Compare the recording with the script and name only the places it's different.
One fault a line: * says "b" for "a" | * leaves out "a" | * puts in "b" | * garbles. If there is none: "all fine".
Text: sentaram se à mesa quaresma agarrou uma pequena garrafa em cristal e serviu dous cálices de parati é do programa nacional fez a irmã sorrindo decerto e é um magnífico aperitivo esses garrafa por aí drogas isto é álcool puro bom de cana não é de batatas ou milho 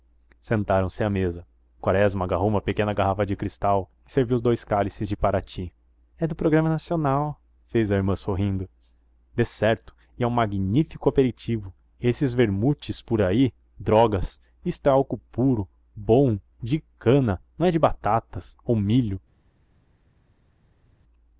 * says "de" for "em"
* says "vermutes" for "garrafa"